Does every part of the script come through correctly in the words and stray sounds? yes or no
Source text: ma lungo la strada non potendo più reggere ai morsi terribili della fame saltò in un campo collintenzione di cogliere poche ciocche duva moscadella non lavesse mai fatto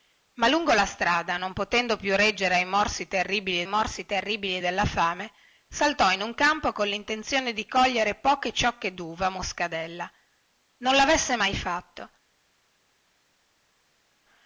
no